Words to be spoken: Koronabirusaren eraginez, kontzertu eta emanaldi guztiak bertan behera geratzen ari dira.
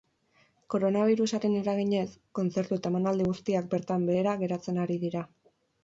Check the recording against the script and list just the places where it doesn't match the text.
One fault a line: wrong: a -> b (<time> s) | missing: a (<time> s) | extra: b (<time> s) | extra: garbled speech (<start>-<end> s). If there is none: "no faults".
no faults